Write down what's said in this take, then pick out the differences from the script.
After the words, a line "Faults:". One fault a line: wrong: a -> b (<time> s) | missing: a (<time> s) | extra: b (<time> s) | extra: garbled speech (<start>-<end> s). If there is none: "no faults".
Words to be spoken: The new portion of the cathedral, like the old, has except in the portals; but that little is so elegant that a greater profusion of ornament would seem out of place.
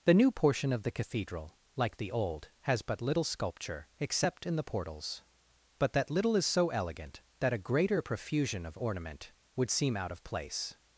The new portion of the cathedral, like the old, has but little sculpture, except in the portals; but that little is so elegant that a greater profusion of ornament would seem out of place.
Faults:
extra: but little sculpture (2.8 s)